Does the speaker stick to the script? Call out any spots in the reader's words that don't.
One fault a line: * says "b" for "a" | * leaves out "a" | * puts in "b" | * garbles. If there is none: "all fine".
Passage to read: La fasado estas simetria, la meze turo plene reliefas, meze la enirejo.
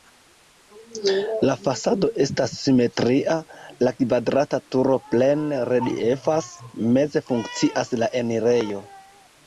* says "kvadrata" for "meze"
* puts in "funkcias"